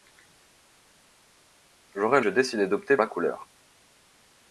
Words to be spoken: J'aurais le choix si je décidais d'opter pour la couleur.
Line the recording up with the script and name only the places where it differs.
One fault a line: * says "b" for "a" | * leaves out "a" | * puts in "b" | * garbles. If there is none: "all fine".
* leaves out "le choix si"
* leaves out "pour"